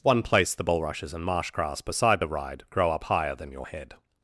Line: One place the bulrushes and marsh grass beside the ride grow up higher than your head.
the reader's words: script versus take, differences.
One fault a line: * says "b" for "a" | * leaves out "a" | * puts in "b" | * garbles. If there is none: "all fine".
all fine